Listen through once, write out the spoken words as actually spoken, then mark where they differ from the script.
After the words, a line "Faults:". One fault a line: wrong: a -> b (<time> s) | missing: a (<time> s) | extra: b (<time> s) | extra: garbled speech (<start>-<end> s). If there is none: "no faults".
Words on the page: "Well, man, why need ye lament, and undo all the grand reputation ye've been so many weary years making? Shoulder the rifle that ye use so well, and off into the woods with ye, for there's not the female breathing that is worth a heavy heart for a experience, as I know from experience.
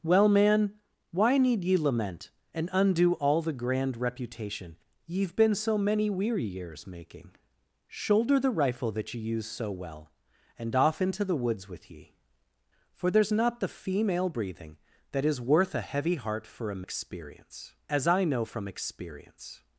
"Well, man, why need ye lament, and undo all the grand reputation ye've been so many weary years making? Shoulder the rifle that ye use so well, and off into the woods with ye, for there's not the female breathing that is worth a heavy heart for a experience, as I know from experience.
Faults:
no faults